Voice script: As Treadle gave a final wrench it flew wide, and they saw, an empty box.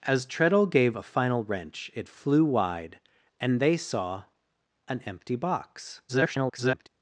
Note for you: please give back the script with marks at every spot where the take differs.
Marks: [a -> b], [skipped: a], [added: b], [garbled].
As Treadle gave a final wrench it flew wide, and they saw, an empty box. [garbled]